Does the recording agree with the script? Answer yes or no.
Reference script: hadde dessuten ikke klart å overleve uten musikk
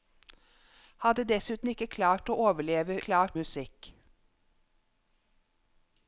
no